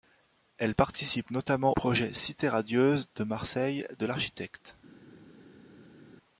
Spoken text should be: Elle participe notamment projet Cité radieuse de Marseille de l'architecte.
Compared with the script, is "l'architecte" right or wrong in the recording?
right